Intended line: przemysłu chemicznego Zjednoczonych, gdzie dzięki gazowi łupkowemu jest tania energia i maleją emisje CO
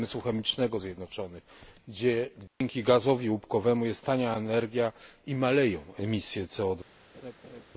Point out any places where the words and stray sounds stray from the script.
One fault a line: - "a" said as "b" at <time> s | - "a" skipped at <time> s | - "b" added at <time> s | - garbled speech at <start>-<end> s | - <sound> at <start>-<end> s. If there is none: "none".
- dropout at 2.5-2.6 s
- laugh at 7.1-7.6 s